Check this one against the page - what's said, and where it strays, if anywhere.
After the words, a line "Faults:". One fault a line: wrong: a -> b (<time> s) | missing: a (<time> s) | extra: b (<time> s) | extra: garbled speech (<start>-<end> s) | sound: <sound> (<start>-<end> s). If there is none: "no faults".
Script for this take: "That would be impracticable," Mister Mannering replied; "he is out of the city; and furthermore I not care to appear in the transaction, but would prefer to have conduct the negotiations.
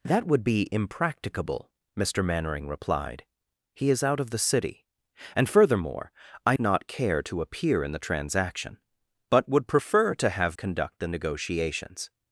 "That would be impracticable," Mister Mannering replied; "he is out of the city; and furthermore I not care to appear in the transaction, but would prefer to have conduct the negotiations.
Faults:
no faults